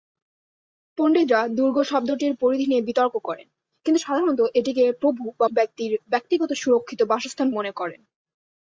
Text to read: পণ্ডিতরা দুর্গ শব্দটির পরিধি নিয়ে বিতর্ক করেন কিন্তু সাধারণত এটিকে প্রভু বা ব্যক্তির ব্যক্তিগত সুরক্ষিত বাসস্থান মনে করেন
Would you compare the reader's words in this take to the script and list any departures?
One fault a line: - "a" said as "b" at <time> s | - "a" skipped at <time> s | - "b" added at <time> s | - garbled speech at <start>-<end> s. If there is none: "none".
none